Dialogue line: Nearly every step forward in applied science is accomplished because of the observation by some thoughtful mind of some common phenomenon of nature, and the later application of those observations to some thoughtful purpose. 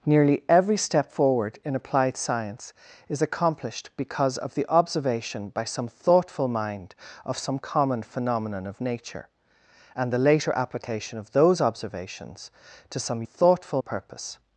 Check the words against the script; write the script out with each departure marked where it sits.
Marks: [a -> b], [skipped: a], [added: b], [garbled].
Nearly every step forward in applied science is accomplished because of the observation by some thoughtful mind of some common phenomenon of nature, and the later application of those observations to some thoughtful purpose.